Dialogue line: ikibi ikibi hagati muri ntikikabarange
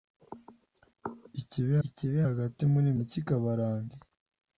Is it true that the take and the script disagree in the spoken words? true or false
false